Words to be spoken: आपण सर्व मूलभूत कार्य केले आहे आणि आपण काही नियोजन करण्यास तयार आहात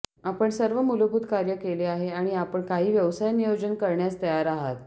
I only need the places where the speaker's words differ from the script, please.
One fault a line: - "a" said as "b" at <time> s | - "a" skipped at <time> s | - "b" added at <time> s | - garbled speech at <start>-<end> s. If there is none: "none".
- "व्यवसाय" added at 2.9 s